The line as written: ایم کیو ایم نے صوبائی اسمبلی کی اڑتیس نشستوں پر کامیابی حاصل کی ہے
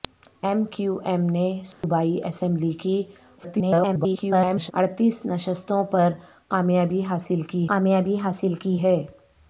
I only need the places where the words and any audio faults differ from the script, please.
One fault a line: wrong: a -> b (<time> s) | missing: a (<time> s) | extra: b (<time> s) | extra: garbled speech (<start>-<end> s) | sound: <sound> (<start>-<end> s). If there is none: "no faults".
sound: dropout (1.7-1.8 s)
extra: garbled speech (3.4-4.7 s)
extra: کامیابی حاصل کی (7.7 s)